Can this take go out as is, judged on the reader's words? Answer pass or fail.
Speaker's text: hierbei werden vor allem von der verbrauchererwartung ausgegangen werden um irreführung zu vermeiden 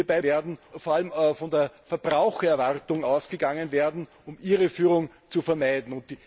pass